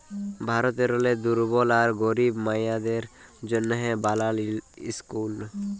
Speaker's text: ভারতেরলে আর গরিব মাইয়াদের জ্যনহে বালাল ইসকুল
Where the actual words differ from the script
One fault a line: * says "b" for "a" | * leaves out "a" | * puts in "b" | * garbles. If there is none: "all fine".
* puts in "দুর্বল"